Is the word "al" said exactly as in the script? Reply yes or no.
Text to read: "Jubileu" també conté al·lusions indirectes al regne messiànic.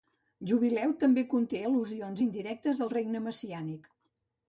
yes